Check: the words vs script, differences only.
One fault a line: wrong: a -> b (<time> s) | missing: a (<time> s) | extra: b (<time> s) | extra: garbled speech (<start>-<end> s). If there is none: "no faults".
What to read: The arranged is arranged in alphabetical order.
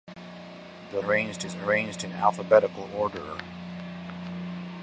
no faults